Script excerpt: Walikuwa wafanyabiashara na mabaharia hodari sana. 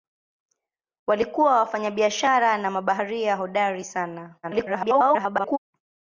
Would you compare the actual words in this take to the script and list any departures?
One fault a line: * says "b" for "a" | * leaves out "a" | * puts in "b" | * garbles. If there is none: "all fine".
* garbles